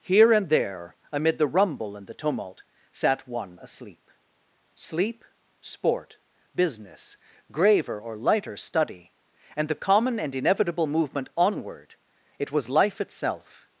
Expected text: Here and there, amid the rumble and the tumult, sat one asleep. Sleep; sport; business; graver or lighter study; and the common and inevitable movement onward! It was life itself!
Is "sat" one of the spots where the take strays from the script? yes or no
no